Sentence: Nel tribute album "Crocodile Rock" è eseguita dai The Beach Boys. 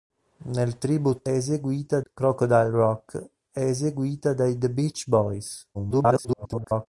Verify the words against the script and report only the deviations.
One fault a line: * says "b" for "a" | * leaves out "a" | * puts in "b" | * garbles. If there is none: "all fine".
* says "eseguita" for "album"
* garbles